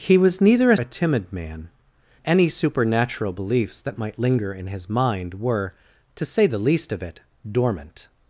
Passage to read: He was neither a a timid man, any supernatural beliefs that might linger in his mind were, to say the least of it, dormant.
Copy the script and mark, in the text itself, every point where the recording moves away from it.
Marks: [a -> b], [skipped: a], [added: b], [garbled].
He was neither a a timid man, any supernatural beliefs that might linger in his mind were, to say the least of it, dormant.